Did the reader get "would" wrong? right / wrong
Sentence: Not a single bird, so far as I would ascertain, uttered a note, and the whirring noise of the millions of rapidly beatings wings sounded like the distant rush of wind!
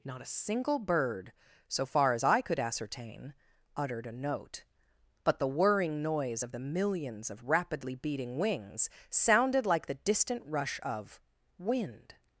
wrong